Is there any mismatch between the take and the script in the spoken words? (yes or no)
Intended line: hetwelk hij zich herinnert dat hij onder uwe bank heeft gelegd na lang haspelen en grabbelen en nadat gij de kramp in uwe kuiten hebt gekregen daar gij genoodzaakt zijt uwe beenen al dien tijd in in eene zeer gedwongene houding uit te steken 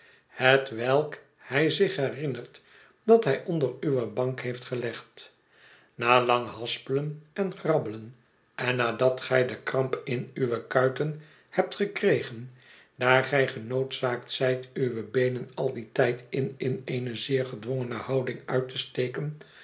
no